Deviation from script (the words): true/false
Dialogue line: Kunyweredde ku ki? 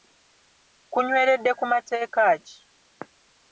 true